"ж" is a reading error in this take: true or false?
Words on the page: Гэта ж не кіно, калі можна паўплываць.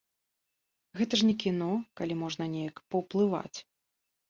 false